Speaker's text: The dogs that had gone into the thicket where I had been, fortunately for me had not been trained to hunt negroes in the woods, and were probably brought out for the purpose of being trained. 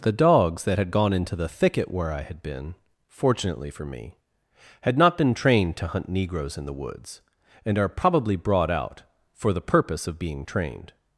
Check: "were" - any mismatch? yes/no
yes